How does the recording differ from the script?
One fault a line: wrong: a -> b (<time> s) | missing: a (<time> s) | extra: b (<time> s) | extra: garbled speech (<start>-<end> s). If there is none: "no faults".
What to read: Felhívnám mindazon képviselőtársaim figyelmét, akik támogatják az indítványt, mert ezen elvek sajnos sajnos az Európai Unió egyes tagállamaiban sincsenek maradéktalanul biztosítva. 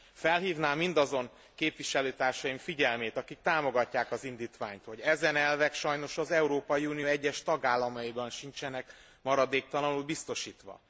wrong: mert -> hogy (4.8 s)
missing: sajnos (6.2 s)